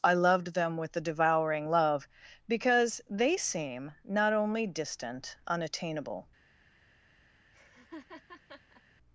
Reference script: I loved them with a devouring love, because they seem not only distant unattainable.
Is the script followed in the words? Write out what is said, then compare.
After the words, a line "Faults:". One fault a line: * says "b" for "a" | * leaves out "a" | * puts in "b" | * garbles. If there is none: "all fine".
I loved them with a devouring love, because they seem not only distant unattainable.
Faults:
all fine